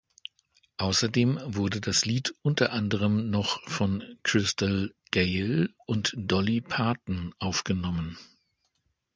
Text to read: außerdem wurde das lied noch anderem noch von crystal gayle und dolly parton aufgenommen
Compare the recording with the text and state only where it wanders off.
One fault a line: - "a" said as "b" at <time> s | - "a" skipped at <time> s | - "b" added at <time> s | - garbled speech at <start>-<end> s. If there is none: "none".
- "noch" said as "unter" at 2.4 s